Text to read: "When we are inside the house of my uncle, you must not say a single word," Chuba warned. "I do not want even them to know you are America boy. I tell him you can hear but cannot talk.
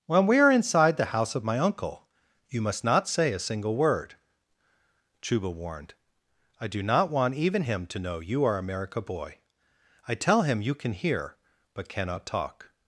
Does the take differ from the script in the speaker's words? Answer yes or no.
yes